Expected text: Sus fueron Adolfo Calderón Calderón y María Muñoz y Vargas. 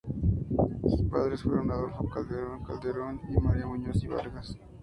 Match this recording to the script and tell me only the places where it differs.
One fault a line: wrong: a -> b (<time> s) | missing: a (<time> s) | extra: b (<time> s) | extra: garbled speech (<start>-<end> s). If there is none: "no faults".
extra: padres (1.1 s)